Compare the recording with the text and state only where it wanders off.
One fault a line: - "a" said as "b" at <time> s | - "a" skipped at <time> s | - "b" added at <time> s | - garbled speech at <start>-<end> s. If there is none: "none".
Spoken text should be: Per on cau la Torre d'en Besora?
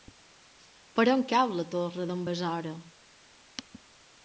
none